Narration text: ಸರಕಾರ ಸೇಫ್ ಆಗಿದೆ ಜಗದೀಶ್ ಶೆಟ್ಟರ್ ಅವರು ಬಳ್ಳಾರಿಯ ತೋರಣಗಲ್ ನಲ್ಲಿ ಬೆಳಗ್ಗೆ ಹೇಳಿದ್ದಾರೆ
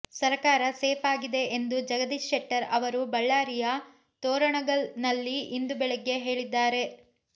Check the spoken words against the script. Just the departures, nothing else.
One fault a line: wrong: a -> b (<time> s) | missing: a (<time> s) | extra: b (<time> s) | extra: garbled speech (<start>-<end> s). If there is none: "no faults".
extra: ಎಂದು (1.6 s)
extra: ಇಂದು (5.6 s)